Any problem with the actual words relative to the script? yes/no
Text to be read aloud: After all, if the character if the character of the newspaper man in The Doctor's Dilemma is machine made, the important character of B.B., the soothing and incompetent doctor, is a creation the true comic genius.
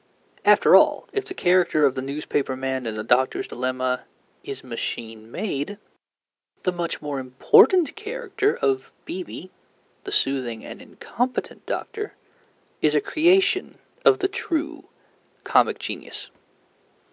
yes